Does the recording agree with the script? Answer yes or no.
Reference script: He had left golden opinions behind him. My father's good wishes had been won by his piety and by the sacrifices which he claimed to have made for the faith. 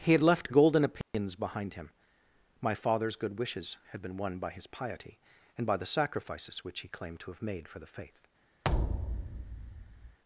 yes